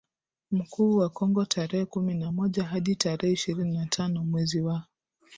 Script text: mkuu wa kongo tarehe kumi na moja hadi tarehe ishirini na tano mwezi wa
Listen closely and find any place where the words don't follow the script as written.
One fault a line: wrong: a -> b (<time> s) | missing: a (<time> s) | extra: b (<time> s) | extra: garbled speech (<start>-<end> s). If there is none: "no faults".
no faults